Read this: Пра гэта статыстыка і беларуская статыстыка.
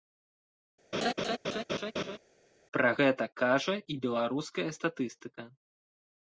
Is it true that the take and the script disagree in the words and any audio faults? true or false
true